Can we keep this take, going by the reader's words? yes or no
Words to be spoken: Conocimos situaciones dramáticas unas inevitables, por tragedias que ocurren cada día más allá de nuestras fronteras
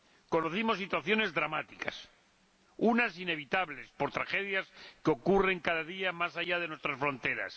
yes